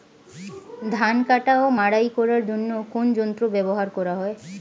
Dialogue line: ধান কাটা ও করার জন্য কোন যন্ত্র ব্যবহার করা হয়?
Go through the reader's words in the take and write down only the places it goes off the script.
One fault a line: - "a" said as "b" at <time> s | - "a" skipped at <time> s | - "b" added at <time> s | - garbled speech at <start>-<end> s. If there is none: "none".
- "মাড়াই" added at 1.8 s